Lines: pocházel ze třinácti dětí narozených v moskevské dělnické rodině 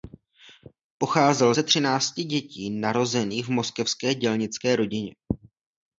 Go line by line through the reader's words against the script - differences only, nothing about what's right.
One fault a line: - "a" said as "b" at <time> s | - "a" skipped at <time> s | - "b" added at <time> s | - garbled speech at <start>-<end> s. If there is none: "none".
none